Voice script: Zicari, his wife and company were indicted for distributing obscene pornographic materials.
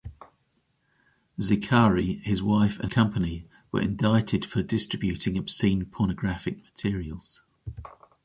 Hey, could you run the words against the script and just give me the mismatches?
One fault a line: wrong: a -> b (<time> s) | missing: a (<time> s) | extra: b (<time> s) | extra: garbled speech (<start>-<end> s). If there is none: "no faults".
no faults